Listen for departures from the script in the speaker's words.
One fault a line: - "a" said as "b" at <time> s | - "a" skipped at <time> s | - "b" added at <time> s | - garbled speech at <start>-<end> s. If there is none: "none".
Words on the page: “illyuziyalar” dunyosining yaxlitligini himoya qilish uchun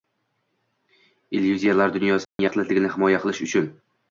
none